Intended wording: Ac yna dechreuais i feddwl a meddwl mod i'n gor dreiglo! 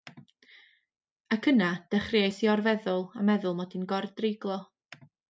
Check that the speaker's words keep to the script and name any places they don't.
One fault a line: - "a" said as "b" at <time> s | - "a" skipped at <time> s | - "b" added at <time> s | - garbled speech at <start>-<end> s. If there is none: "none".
- "or" added at 2.5 s